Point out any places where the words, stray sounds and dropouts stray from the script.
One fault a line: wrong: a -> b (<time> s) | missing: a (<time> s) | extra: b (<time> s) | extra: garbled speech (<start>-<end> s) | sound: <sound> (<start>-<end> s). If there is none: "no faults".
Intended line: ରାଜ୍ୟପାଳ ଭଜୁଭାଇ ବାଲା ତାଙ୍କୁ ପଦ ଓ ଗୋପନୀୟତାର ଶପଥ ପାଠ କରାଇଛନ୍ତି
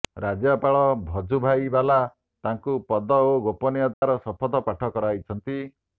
sound: dropout (3.9-4.0 s)